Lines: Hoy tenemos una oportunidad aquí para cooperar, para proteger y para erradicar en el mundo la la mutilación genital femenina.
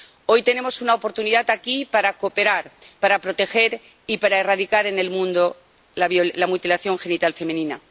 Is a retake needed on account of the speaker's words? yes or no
yes